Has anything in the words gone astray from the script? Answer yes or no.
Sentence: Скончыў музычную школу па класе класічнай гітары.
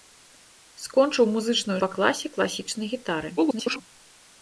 yes